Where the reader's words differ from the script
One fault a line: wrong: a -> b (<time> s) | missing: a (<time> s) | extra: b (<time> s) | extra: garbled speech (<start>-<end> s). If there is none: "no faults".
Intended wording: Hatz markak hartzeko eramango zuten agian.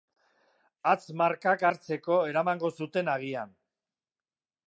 no faults